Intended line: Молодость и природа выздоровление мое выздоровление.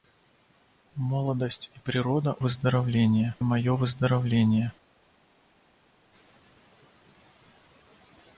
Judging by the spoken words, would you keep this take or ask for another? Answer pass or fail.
pass